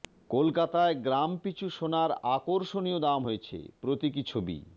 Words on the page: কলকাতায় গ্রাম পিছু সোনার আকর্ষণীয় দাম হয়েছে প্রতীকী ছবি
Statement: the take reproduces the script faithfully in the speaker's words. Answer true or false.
true